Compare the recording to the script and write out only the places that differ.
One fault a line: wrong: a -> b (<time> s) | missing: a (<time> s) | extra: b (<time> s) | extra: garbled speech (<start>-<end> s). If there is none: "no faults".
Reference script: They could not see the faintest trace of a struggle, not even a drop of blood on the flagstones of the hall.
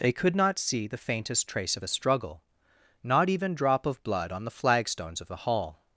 missing: a (3.6 s)